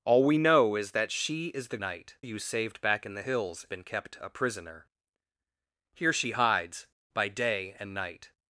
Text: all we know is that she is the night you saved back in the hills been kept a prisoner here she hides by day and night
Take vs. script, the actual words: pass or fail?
pass